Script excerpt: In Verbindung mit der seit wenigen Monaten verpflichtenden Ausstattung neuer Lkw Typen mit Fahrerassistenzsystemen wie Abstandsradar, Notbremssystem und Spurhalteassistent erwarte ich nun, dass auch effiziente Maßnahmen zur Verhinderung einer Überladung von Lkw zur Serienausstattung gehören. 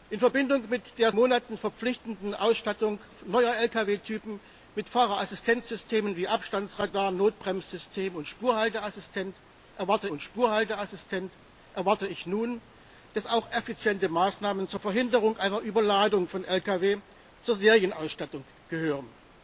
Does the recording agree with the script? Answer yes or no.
no